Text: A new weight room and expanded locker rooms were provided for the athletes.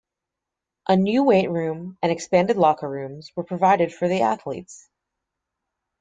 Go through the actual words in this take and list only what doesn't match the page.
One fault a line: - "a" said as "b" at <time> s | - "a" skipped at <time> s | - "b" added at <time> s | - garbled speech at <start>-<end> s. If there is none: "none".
none